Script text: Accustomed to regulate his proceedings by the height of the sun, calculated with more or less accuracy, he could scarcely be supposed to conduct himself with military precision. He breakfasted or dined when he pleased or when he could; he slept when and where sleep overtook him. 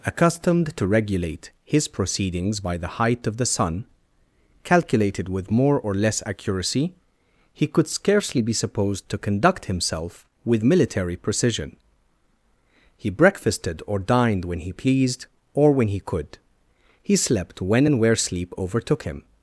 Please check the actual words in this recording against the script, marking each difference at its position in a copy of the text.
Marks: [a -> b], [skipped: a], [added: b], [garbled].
Accustomed to regulate his proceedings by the height of the sun, calculated with more or less accuracy, he could scarcely be supposed to conduct himself with military precision. He breakfasted or dined when he pleased or when he could; he slept when and where sleep overtook him.